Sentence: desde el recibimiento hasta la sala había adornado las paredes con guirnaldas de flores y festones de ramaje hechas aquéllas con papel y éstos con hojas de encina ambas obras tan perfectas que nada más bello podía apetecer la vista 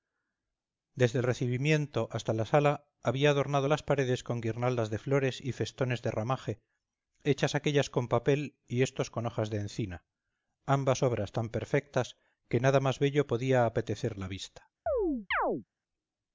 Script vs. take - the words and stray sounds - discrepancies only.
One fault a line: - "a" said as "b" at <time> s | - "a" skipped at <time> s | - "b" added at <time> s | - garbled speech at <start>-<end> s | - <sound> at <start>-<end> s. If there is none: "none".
- chirp at 14.9-15.6 s